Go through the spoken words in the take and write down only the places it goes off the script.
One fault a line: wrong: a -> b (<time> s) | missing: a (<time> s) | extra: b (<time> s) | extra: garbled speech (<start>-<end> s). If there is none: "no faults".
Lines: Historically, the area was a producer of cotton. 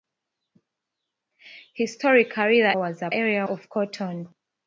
missing: area (2.8 s)
wrong: producer -> area (3.1 s)